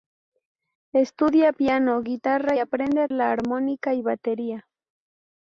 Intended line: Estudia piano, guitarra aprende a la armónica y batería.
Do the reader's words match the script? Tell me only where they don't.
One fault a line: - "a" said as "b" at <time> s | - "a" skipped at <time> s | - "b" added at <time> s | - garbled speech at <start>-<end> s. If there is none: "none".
none